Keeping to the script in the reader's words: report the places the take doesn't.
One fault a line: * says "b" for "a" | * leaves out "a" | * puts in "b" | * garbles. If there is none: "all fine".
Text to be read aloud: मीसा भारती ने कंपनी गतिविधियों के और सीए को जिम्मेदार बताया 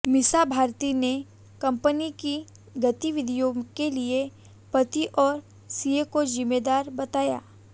* puts in "की"
* puts in "लिए पति"